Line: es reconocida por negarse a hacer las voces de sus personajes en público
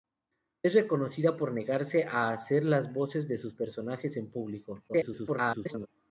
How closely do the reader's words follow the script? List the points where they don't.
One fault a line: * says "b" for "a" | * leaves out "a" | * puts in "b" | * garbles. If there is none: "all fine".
* garbles